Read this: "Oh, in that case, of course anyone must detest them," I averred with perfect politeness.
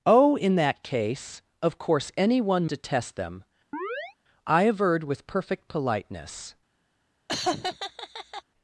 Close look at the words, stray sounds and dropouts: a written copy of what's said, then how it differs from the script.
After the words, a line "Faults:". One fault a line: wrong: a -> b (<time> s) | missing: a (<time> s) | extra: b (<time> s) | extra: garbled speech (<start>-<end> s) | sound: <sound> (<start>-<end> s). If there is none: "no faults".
"Oh, in that case, of course anyone detest them," I averred with perfect politeness.
Faults:
missing: must (2.7 s)
sound: chirp (3.7-4.2 s)
sound: laugh (7.3-8.4 s)